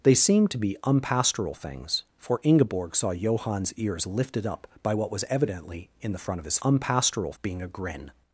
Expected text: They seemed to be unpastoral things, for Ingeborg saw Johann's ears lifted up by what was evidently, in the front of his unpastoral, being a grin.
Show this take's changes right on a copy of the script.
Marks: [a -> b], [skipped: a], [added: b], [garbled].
They seemed to be unpastoral things, for Ingeborg saw Johann's ears lifted up by what was evidently, in the front of his unpastoral, being a grin.